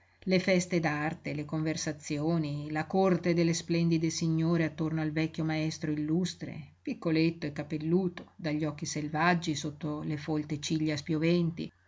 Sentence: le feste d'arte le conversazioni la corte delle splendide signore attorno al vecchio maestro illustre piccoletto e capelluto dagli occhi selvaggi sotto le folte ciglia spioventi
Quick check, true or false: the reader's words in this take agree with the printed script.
true